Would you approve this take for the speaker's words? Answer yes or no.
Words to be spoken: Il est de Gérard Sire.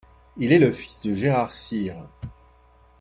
no